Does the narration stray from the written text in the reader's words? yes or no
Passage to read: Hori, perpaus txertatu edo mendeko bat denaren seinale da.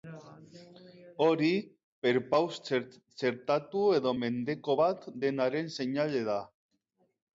no